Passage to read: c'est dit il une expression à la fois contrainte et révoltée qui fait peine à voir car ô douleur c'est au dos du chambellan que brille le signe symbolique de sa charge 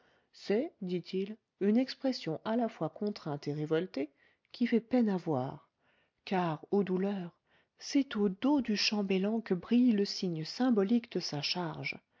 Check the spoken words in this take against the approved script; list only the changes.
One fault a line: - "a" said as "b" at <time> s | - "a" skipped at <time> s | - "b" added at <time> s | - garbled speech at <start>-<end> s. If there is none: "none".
none